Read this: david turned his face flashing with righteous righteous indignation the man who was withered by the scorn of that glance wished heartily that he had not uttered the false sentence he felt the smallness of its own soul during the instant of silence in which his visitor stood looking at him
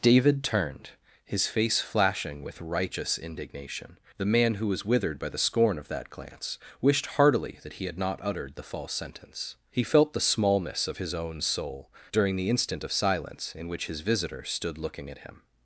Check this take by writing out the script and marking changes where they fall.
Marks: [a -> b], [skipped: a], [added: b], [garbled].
david turned his face flashing with righteous [skipped: righteous] indignation the man who was withered by the scorn of that glance wished heartily that he had not uttered the false sentence he felt the smallness of [its -> his] own soul during the instant of silence in which his visitor stood looking at him